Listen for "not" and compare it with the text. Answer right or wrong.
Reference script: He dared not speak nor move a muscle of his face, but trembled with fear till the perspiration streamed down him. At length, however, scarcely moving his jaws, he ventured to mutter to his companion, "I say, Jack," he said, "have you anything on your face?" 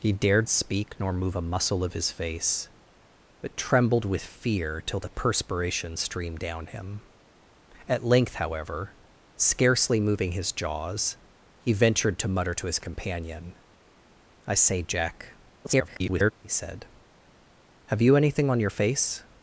wrong